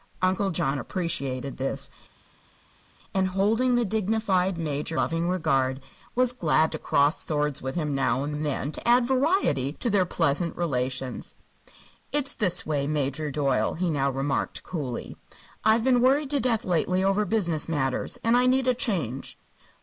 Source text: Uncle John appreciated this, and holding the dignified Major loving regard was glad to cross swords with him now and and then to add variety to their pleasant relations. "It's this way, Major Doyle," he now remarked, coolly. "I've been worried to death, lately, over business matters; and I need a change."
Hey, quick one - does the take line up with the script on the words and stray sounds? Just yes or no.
yes